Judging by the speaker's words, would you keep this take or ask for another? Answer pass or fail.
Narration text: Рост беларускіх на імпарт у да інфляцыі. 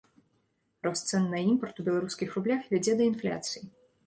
fail